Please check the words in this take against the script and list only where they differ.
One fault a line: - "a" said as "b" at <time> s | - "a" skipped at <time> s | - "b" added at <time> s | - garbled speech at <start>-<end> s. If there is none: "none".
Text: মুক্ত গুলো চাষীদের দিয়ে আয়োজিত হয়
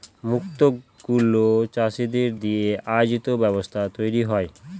- "ব্যবস্থায় তৈরী" added at 3.4 s